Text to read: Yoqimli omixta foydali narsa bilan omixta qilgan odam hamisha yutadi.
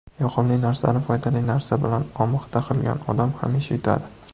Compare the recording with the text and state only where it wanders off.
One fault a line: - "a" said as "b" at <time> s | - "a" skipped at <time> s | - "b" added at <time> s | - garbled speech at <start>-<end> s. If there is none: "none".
- "omixta" said as "narsani" at 0.6 s